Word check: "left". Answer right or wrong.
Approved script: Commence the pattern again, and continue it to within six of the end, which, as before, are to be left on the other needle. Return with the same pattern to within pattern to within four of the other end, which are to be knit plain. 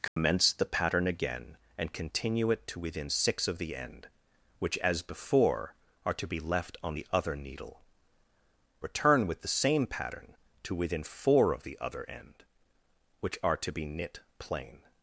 right